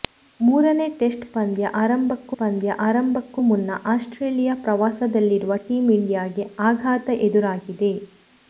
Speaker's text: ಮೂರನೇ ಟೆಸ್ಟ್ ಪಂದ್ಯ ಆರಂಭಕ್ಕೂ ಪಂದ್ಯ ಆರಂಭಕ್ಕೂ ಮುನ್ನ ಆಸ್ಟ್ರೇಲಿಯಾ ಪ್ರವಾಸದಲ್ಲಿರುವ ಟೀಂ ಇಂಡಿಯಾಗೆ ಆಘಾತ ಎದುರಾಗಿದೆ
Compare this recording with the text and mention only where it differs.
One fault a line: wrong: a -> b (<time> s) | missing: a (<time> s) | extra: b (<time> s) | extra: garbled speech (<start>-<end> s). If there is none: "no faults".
no faults